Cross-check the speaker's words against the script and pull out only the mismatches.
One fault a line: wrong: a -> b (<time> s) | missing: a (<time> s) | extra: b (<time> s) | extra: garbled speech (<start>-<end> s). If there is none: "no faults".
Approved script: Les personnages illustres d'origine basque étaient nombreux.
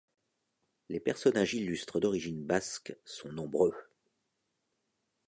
wrong: étaient -> sont (3.0 s)